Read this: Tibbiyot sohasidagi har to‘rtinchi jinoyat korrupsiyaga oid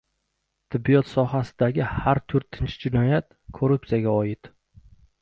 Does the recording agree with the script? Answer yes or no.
yes